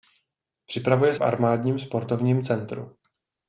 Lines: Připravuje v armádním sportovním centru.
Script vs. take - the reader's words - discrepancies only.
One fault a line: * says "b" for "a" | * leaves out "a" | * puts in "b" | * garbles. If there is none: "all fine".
all fine